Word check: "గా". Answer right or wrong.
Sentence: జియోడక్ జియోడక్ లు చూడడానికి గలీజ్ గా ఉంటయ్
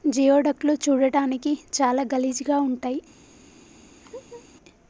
right